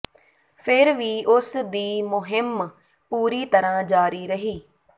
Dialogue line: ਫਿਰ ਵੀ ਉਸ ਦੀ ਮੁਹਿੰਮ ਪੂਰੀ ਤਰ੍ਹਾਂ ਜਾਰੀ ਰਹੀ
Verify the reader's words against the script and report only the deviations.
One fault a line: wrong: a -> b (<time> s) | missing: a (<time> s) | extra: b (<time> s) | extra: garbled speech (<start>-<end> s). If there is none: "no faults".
no faults